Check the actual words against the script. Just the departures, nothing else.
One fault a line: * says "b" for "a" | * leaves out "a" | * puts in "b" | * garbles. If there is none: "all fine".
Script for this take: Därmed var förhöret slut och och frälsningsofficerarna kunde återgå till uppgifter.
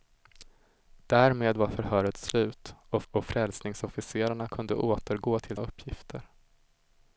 all fine